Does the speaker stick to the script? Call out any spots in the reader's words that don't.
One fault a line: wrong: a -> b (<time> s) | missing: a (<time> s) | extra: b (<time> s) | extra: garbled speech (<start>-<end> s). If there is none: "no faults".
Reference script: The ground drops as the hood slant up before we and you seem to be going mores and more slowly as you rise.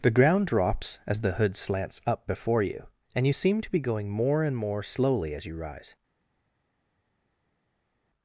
wrong: slant -> slants (1.6 s)
wrong: we -> you (2.6 s)
wrong: mores -> more (4.1 s)